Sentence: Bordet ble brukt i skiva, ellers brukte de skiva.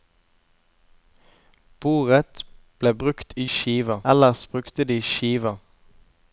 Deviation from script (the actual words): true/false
false